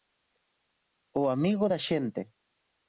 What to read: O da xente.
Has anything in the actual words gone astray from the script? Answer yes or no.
yes